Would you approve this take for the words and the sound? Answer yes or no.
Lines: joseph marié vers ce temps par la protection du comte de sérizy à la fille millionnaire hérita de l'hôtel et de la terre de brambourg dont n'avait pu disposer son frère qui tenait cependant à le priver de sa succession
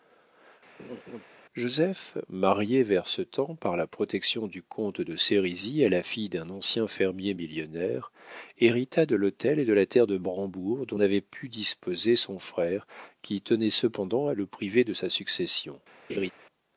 no